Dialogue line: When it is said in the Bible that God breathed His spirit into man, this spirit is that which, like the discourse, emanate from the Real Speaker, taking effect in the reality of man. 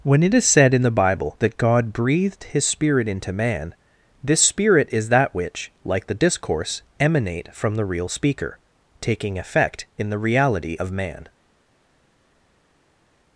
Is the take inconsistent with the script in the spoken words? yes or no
no